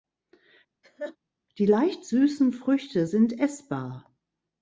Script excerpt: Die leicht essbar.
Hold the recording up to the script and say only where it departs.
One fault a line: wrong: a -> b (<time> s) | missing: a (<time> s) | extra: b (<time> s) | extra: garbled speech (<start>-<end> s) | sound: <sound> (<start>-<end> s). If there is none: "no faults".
sound: laugh (0.8-1.2 s)
extra: süßen Früchte sind (2.0 s)